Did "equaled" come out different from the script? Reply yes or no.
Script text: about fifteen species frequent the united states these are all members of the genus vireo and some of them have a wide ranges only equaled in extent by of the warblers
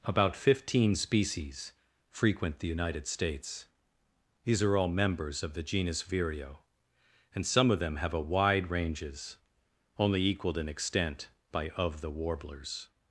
no